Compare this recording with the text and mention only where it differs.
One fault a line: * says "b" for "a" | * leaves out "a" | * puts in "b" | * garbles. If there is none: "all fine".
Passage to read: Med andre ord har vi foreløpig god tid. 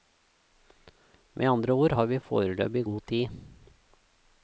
all fine